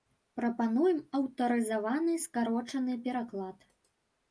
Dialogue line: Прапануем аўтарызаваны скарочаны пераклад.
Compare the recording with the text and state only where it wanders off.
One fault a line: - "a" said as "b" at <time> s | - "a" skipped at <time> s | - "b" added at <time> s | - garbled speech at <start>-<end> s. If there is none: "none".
none